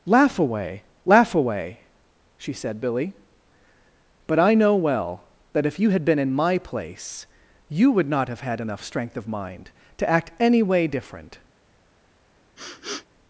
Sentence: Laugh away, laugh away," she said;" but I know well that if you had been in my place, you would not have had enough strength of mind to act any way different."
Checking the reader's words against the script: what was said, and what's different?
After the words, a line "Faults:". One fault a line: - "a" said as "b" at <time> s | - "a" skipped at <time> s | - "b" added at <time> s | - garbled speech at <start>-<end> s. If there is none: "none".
Laugh away, laugh away," she said;" billy but I know well that if you had been in my place, you would not have had enough strength of mind to act any way different."
Faults:
- "billy" added at 2.8 s